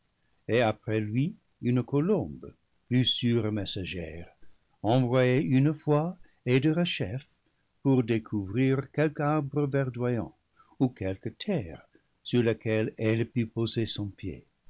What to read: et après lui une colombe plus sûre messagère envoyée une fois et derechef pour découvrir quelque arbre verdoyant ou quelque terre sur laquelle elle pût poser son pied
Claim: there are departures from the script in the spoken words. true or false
false